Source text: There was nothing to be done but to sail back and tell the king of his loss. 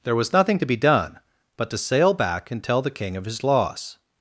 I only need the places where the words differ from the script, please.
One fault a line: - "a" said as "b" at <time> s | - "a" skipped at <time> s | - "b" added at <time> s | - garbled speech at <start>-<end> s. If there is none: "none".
none